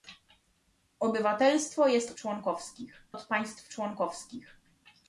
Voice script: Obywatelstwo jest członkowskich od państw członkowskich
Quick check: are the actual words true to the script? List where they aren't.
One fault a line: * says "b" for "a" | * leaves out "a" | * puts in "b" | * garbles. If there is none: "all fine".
all fine